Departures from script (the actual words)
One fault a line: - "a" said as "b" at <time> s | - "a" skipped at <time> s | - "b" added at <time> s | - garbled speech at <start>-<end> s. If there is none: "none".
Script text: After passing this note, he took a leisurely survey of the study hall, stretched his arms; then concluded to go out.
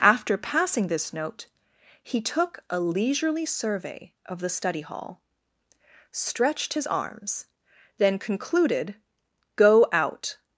- "to" skipped at 8.9 s